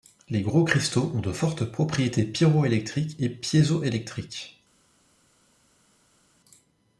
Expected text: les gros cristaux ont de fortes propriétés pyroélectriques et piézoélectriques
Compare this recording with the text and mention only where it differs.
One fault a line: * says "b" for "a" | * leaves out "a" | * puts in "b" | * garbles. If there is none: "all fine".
all fine